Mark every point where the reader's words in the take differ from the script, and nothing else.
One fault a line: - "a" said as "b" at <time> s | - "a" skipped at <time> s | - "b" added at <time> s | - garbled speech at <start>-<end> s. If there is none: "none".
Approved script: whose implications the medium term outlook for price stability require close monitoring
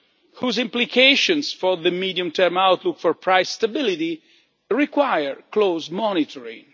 - "for" added at 1.5 s